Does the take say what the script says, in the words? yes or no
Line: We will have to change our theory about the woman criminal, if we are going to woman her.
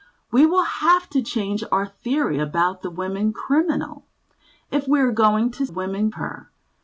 yes